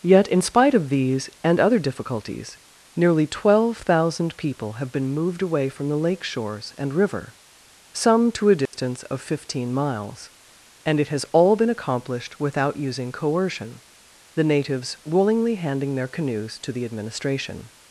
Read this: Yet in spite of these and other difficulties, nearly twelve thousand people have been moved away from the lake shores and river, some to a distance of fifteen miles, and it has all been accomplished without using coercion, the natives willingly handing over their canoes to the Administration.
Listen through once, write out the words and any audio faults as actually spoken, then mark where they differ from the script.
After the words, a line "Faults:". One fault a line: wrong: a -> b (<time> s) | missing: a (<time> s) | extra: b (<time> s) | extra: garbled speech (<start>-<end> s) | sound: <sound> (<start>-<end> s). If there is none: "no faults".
Yet in spite of these and other difficulties, nearly twelve thousand people have been moved away from the lake shores and river, some to a distance of fifteen miles, and it has all been accomplished without using coercion, the natives willingly handing their canoes to the Administration.
Faults:
sound: dropout (8.7-8.7 s)
missing: over (15.9 s)